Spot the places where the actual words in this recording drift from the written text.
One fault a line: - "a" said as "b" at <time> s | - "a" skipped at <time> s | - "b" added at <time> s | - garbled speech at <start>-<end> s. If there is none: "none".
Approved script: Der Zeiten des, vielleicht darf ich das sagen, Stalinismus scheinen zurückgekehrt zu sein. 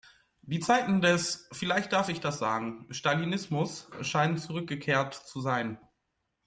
- "Der" said as "Die" at 0.4 s